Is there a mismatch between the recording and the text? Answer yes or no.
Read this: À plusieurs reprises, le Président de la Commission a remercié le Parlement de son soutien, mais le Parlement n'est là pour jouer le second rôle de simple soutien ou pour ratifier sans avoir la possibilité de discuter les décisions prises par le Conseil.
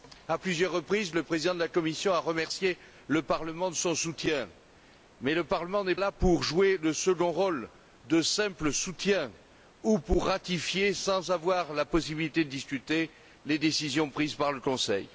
no